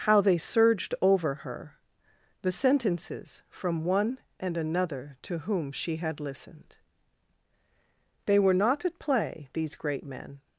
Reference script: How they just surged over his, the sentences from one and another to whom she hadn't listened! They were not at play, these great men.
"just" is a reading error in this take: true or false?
true